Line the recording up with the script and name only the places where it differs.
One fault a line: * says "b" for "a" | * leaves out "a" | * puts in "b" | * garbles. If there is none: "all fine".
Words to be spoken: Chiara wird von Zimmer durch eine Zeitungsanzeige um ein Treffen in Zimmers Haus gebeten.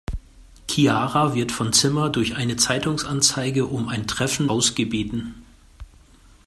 * leaves out "in Zimmers"